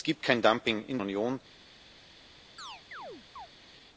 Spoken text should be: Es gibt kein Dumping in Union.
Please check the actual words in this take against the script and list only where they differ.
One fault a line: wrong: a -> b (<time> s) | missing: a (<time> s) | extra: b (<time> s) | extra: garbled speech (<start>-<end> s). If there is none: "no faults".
no faults